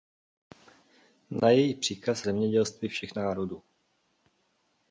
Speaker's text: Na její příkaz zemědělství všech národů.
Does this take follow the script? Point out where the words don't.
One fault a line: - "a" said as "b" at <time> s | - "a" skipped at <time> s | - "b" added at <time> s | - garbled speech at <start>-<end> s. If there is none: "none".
none